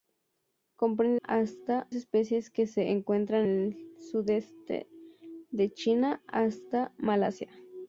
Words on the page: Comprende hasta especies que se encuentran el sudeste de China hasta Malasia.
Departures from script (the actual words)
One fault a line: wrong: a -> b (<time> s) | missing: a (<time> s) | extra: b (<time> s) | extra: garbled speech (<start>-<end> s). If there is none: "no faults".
no faults